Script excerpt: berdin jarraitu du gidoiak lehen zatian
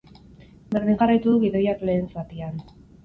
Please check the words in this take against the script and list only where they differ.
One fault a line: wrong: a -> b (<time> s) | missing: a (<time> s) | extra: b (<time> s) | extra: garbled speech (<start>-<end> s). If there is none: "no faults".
no faults